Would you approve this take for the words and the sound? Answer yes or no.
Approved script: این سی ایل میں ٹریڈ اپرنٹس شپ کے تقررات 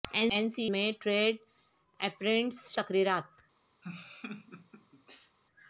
no